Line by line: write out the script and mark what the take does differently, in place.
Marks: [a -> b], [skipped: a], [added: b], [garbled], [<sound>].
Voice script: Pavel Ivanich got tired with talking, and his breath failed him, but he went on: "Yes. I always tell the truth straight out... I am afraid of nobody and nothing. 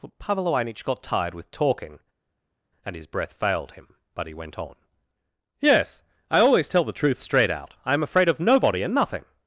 Pavel Ivanich got tired with talking, and his breath failed him, but he went on: "Yes. I always tell the truth straight out... I am afraid of nobody and nothing.